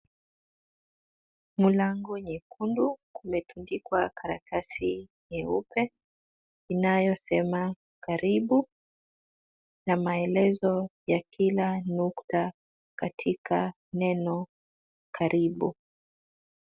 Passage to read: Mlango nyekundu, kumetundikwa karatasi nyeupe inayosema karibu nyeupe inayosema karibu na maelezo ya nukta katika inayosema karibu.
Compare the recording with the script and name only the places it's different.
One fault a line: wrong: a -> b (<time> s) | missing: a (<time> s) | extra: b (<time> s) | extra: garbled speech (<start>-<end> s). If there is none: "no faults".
missing: nyeupe inayosema karibu (8.7 s)
extra: kila (11.3 s)
wrong: inayosema -> neno (13.9 s)